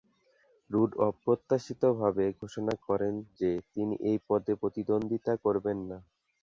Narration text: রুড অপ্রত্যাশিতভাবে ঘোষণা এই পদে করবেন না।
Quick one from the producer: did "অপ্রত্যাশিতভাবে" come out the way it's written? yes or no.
yes